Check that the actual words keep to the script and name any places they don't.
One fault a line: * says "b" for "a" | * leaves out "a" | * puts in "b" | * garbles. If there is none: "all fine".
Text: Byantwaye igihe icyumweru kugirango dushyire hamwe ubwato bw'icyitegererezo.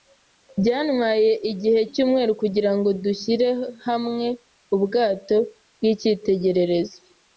all fine